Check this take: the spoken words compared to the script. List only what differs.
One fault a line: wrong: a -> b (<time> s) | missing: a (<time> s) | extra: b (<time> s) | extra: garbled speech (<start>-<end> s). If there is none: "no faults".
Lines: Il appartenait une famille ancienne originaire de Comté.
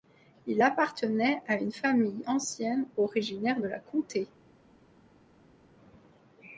extra: à (1.4 s)
extra: la (3.7 s)